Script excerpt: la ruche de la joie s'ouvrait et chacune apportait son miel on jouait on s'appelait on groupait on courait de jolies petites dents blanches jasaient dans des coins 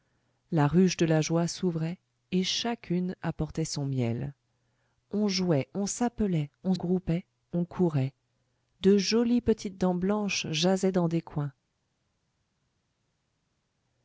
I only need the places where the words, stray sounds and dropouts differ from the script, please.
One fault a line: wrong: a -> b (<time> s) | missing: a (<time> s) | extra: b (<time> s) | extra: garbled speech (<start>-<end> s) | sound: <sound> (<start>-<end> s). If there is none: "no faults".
no faults